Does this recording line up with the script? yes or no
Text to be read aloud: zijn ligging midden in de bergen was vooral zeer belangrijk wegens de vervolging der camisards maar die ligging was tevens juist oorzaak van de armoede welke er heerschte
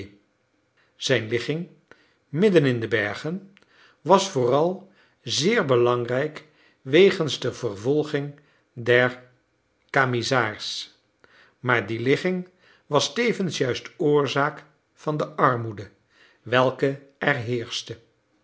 yes